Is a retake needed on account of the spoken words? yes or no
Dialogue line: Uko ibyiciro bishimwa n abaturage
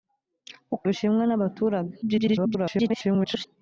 yes